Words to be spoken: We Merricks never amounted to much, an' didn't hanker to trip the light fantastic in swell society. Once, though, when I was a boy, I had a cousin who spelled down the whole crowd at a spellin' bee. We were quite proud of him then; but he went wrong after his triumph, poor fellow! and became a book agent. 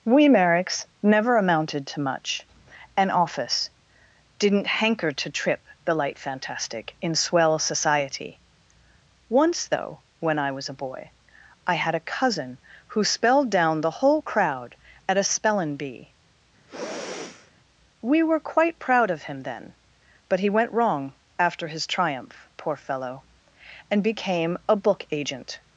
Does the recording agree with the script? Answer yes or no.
no